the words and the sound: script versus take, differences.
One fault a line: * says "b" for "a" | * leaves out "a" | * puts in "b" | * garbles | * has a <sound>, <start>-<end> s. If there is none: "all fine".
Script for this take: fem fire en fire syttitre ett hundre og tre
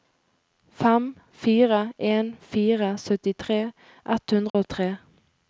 * has a dropout, 4.5-4.5 s